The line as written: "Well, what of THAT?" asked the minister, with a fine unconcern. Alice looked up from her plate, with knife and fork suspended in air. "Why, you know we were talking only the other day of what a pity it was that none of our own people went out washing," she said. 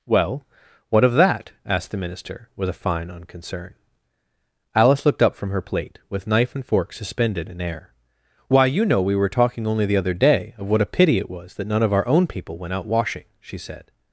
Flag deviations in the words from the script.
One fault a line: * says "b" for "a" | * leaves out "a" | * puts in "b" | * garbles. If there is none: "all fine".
all fine